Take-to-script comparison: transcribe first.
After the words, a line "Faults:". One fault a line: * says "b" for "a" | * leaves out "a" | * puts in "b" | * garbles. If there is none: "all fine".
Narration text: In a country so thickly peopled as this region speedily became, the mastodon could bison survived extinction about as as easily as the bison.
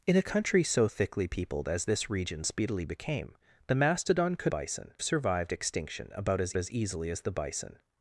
In a country so thickly peopled as this region speedily became, the mastodon could bison survived extinction about as as easily as the bison.
Faults:
all fine